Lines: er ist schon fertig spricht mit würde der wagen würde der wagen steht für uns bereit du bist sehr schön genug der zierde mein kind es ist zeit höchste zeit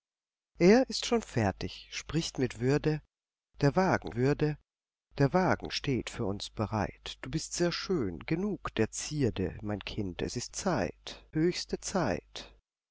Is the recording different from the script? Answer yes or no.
no